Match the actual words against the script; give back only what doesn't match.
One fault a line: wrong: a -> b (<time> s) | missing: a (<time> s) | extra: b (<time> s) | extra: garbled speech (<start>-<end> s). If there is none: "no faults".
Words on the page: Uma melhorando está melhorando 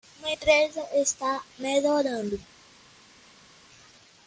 wrong: melhorando -> empresa (0.3 s)